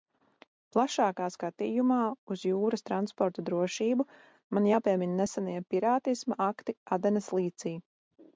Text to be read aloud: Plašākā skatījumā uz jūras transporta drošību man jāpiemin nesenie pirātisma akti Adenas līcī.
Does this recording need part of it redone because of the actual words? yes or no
no